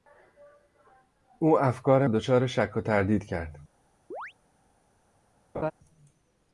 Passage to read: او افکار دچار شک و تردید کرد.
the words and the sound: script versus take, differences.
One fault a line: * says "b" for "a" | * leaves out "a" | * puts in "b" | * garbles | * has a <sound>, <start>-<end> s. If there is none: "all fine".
* has a chirp, 4.1-4.3 s
* has a laugh, 5.5-5.7 s